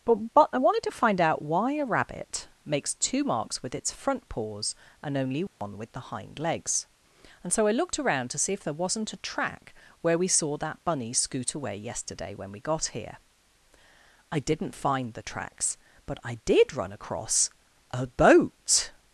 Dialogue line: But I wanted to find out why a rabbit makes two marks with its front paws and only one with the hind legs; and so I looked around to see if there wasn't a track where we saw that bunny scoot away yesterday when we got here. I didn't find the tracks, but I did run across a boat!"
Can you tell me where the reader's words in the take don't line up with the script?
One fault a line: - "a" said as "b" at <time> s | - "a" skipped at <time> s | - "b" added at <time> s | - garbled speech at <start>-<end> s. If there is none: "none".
- "but" added at 0.3 s